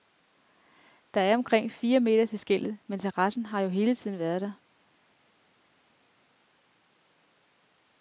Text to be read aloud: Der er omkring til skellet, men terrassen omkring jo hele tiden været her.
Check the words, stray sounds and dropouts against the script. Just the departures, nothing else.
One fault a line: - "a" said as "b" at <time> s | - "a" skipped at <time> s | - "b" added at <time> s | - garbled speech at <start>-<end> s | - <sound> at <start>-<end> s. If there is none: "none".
- "fire meter" added at 1.7 s
- "omkring" said as "har" at 3.5 s
- "her" said as "der" at 4.4 s